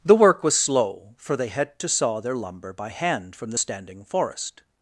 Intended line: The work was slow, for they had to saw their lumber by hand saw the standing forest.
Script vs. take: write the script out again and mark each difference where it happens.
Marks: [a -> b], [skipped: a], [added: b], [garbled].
The work was slow, for they had to saw their lumber by hand [saw -> from] the standing forest.